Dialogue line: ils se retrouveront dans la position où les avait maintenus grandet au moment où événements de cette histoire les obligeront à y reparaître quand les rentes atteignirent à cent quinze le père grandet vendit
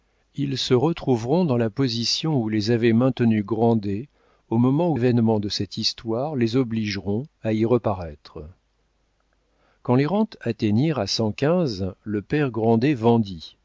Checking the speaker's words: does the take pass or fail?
pass